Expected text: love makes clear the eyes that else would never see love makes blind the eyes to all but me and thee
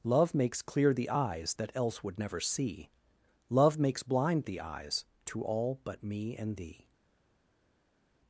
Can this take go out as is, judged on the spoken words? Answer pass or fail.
pass